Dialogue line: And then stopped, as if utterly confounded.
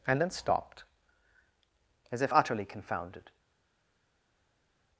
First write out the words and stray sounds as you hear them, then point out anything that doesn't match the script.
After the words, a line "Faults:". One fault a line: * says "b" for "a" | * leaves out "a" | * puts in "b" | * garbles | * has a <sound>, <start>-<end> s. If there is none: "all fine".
And then stopped, as if utterly confounded.
Faults:
all fine